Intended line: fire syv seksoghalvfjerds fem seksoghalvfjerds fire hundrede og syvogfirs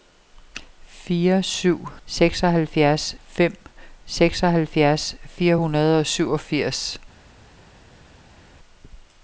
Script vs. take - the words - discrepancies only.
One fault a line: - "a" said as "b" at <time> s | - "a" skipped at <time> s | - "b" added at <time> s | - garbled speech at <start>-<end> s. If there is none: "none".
none